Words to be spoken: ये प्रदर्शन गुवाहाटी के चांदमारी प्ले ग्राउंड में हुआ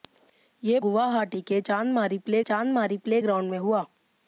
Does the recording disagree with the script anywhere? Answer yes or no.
yes